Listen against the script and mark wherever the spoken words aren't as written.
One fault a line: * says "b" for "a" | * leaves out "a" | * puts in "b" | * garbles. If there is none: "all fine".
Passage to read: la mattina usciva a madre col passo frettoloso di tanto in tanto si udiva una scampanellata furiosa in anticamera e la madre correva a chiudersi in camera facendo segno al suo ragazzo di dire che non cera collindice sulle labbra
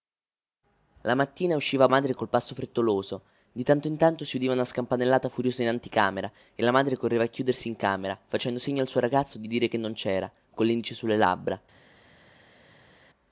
all fine